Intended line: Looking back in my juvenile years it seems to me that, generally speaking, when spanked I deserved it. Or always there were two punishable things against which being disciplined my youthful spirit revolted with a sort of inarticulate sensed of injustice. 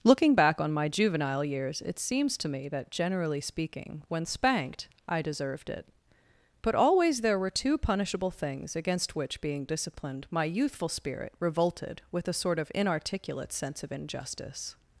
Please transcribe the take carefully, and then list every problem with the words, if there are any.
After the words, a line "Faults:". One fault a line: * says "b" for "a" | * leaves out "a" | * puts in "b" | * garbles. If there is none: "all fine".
Looking back on my juvenile years it seems to me that, generally speaking, when spanked I deserved it. But always there were two punishable things against which being disciplined my youthful spirit revolted with a sort of inarticulate sense of injustice.
Faults:
* says "on" for "in"
* says "But" for "Or"
* says "sense" for "sensed"